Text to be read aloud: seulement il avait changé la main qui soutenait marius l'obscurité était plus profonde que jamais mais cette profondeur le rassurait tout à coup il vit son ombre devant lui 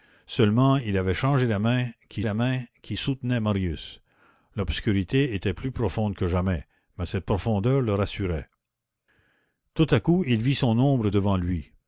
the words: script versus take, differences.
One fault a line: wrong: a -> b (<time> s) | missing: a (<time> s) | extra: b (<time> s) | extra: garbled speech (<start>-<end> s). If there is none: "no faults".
extra: la main qui (2.2 s)